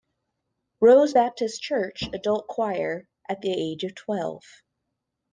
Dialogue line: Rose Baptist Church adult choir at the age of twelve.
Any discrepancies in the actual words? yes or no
no